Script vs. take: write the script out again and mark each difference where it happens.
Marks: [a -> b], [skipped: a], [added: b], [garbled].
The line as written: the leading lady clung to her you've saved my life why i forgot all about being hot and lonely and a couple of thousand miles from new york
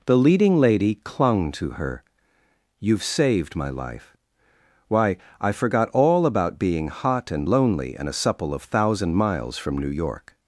the leading lady clung to her you've saved my life why i forgot all about being hot and lonely and a [couple -> supple] of thousand miles from new york